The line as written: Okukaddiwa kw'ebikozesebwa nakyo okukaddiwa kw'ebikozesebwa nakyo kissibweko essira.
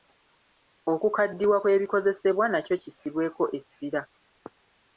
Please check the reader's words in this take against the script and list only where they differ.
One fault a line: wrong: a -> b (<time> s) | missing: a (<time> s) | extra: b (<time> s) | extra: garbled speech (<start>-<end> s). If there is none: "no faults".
missing: okukaddiwa kw'ebikozesebwa nakyo (2.8 s)